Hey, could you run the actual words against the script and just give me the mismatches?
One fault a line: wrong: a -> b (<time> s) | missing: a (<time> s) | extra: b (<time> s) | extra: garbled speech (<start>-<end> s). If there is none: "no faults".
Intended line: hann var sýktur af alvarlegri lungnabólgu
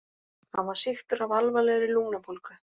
no faults